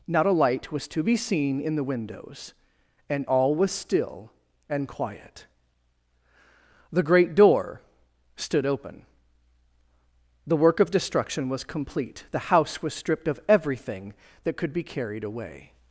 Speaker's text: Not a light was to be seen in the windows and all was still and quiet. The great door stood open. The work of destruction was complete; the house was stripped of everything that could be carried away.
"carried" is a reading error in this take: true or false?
false